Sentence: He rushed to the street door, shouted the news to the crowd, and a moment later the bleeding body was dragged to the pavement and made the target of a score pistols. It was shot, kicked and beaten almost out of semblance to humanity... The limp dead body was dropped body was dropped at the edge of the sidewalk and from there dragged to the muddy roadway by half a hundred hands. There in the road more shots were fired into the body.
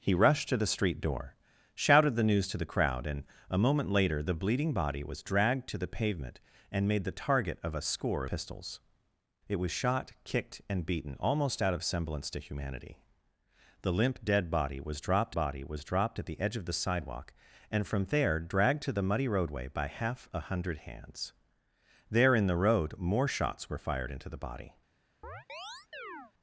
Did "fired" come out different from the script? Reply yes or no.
no